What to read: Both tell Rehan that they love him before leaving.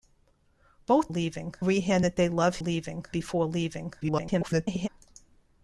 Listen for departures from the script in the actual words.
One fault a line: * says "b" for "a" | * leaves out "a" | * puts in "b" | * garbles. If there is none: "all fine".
* says "leaving" for "tell"
* says "leaving" for "him"
* garbles